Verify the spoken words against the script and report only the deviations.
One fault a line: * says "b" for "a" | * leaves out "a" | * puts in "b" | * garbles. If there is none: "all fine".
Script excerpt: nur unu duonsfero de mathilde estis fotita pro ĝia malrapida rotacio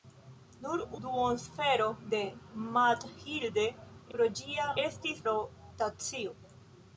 * leaves out "unu"
* leaves out "estis fotita"
* says "estis" for "malrapida"